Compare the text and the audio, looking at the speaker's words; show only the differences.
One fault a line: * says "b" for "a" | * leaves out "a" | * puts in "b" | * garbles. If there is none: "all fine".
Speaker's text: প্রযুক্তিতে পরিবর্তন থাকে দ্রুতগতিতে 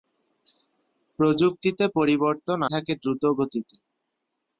all fine